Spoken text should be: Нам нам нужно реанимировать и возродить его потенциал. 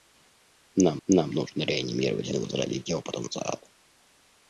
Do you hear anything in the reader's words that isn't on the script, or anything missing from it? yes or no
no